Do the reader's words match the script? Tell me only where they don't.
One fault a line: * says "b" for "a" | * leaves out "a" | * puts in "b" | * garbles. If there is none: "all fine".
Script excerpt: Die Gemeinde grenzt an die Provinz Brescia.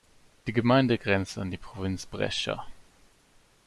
all fine